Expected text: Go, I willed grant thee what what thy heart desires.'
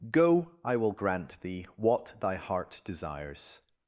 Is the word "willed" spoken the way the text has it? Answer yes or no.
no